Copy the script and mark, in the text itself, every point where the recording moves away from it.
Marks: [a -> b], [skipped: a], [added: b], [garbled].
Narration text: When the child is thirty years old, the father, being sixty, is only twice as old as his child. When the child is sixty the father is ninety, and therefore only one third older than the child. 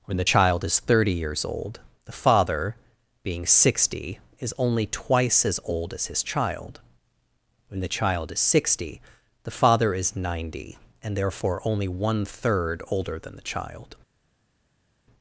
When the child is thirty years old, the father, being sixty, is only twice as old as his child. When the child is sixty the father is ninety, and therefore only one third older than the child.